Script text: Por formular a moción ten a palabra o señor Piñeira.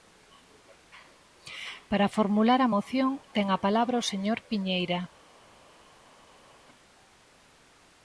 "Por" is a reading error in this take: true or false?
true